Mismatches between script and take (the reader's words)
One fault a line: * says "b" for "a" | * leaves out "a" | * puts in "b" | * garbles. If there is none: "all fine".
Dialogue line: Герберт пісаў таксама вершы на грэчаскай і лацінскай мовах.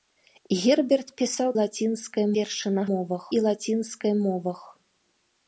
* says "лацінскай" for "таксама"
* says "мовах" for "грэчаскай"